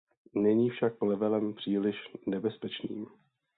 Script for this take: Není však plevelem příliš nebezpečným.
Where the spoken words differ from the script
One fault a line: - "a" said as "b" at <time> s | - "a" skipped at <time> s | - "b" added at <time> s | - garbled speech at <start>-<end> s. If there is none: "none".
none